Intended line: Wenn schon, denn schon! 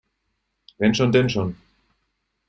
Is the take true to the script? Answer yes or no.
yes